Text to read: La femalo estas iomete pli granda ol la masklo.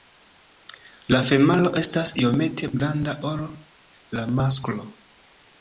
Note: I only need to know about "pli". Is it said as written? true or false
false